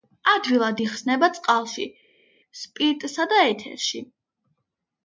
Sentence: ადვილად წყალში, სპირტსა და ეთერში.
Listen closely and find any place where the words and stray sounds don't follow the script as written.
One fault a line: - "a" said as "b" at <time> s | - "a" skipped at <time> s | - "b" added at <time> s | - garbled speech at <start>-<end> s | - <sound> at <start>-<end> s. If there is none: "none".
- "იხსნება" added at 0.8 s